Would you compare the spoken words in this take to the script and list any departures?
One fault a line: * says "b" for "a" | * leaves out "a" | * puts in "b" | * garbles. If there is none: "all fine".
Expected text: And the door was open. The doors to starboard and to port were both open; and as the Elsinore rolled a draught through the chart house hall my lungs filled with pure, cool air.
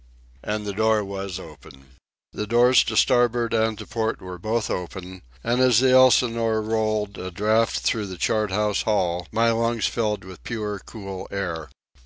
all fine